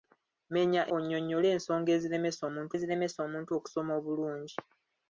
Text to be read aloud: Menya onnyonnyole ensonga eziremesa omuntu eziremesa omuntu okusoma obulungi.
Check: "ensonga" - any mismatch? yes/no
no